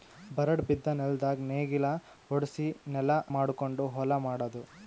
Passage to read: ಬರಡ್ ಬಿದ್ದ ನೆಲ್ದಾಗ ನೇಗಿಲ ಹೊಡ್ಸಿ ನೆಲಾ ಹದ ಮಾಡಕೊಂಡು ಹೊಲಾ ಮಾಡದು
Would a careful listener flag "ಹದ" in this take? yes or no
yes